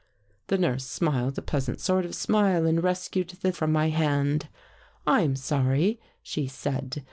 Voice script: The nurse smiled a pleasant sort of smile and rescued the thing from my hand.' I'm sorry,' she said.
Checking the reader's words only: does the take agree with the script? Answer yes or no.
no